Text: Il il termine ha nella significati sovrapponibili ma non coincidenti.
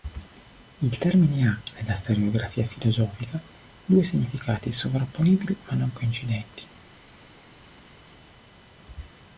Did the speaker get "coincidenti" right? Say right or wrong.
right